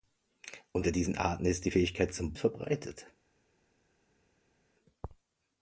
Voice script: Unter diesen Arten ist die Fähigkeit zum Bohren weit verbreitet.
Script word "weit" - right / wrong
wrong